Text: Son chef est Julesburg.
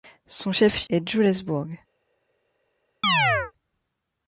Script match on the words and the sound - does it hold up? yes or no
no